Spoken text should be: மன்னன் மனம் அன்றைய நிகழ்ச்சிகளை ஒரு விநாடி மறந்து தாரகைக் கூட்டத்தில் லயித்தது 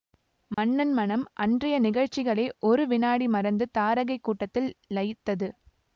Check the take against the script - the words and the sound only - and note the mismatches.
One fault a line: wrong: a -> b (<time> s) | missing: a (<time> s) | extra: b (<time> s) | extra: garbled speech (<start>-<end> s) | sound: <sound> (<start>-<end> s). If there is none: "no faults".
sound: dropout (0.5-0.6 s)